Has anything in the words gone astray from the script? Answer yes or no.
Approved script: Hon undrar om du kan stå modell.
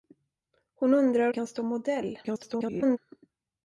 yes